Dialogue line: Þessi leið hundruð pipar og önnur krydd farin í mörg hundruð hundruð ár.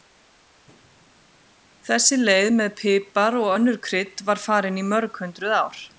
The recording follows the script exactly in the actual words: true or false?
false